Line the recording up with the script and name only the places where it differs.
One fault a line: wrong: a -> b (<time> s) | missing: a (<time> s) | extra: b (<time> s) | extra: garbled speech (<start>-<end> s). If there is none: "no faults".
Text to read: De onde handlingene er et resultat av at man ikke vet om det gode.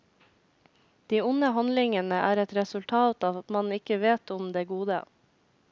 no faults